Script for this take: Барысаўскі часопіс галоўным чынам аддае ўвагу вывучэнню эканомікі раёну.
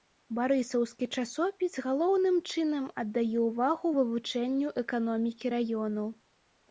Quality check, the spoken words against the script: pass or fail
pass